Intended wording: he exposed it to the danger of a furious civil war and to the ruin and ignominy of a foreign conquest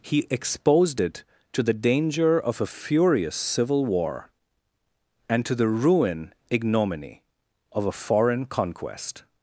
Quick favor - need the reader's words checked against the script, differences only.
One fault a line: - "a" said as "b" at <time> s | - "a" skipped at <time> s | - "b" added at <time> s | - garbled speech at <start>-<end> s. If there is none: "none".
- "and" skipped at 6.3 s